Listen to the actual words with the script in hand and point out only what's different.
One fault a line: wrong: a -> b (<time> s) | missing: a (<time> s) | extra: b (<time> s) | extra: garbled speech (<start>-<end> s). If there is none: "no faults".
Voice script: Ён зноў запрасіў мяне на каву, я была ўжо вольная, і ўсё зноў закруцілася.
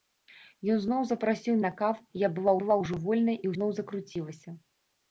missing: мяне (1.6 s)
extra: была (2.6 s)
missing: ўсё (3.5 s)